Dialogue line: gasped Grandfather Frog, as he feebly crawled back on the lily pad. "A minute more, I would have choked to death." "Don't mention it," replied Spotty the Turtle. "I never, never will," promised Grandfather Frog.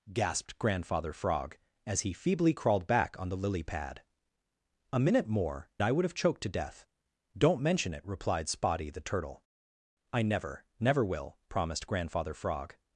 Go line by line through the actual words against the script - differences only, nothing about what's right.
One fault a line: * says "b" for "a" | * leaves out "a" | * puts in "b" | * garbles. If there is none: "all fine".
all fine